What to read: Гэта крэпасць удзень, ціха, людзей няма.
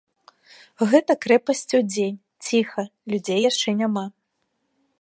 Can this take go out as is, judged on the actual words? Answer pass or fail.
fail